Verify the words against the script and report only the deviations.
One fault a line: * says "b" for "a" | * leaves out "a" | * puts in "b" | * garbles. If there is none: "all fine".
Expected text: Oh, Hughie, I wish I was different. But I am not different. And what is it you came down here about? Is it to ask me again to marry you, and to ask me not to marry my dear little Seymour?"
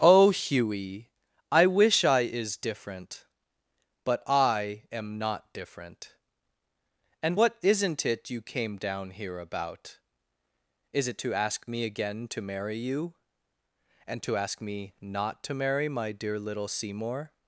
* says "is" for "was"
* says "isn't" for "is"